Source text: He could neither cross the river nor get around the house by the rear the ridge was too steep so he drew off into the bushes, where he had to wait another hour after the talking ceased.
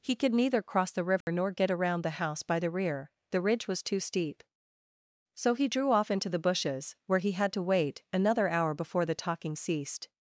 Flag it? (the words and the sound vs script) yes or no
yes